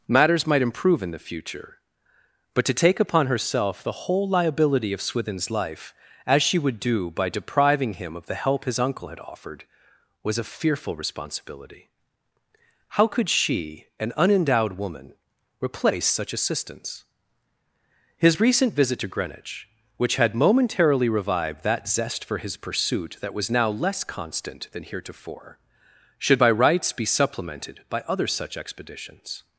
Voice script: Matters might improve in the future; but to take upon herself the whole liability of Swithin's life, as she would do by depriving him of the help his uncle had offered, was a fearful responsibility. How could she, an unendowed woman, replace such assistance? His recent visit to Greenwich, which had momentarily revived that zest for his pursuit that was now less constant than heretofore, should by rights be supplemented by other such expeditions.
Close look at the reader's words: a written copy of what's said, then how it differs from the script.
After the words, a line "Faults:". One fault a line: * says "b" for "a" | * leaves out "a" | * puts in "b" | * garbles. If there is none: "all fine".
Matters might improve in the future; but to take upon herself the whole liability of Swithin's life, as she would do by depriving him of the help his uncle had offered, was a fearful responsibility. How could she, an unendowed woman, replace such assistance? His recent visit to Greenwich, which had momentarily revived that zest for his pursuit that was now less constant than heretofore, should by rights be supplemented by other such expeditions.
Faults:
all fine